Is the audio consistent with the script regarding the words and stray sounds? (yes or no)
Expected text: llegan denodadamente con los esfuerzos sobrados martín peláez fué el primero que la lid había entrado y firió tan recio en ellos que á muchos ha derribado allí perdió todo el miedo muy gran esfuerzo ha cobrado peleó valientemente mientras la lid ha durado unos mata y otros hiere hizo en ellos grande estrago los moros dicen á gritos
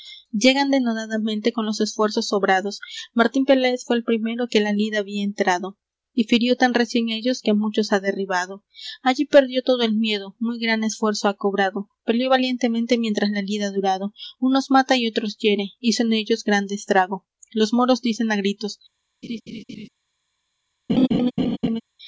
no